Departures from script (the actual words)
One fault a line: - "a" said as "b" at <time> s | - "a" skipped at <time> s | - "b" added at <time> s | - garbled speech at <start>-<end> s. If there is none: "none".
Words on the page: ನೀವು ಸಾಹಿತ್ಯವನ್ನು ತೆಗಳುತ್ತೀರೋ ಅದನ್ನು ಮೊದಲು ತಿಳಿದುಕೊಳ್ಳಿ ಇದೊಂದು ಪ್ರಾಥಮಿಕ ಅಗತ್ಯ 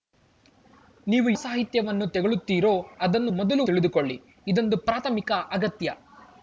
none